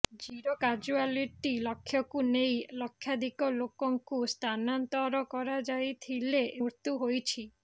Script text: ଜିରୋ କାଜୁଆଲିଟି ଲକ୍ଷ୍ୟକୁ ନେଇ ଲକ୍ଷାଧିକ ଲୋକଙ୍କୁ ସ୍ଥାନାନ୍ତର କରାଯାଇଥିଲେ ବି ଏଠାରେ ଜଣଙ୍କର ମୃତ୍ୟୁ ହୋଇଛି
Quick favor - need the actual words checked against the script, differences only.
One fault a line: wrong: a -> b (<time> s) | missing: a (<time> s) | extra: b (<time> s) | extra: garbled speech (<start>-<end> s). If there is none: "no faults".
missing: ବି ଏଠାରେ ଜଣଙ୍କର (6.4 s)